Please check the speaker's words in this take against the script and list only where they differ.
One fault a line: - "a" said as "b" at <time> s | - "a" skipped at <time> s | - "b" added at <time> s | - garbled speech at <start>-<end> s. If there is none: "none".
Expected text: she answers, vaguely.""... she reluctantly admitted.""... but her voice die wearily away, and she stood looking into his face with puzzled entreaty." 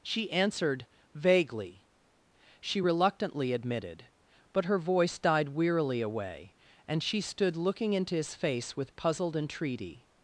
- "answers" said as "answered" at 0.3 s
- "die" said as "died" at 5.2 s